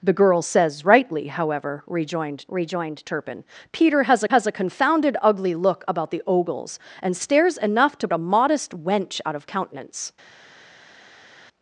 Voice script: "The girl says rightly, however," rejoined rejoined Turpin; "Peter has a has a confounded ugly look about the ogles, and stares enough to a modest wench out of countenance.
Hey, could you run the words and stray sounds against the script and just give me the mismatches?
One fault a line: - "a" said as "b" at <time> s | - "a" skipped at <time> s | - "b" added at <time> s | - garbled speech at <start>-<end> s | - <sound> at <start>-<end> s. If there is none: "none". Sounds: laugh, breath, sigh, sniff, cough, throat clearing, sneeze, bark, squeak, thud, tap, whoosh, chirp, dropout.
none